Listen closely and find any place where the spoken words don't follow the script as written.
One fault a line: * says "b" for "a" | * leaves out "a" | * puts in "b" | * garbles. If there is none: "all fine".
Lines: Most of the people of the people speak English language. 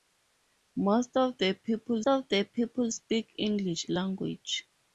all fine